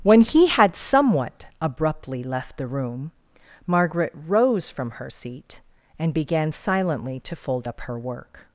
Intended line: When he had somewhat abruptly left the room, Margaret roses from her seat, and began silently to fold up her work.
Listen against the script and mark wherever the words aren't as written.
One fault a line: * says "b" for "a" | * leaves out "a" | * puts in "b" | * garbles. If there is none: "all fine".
* says "rose" for "roses"